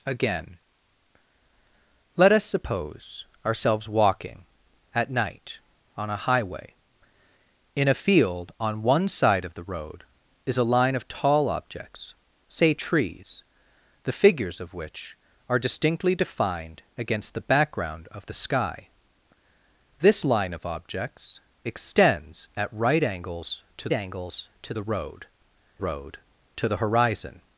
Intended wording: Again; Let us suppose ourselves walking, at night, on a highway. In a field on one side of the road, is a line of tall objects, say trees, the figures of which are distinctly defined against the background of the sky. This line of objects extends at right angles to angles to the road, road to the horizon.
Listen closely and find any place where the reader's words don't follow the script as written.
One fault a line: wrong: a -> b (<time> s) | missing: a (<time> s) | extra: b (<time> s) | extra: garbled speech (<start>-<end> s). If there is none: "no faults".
no faults